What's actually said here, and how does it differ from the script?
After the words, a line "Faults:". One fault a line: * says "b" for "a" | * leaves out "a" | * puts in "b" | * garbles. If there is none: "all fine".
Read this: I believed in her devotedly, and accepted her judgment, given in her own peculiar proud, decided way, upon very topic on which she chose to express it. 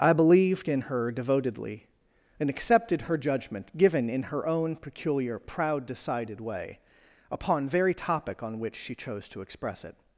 I believed in her devotedly, and accepted her judgment, given in her own peculiar proud, decided way, upon very topic on which she chose to express it.
Faults:
all fine